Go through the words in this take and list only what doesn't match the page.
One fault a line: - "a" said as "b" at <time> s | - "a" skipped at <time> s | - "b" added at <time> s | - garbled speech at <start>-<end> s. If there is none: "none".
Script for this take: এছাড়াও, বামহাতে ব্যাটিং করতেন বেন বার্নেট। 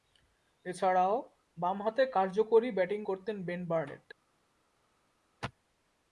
- "কার্যকরী" added at 2.1 s